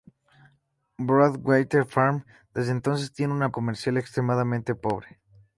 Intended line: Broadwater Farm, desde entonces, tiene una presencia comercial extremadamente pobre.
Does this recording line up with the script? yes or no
no